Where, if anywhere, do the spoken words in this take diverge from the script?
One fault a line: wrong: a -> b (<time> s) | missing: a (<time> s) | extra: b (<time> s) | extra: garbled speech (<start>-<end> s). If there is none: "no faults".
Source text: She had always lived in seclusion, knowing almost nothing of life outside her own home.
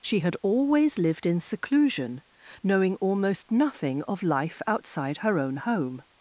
no faults